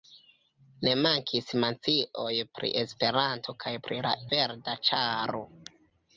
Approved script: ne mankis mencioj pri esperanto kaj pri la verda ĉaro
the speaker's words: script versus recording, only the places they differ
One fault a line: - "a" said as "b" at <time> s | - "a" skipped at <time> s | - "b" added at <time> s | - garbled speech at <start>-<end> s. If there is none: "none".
none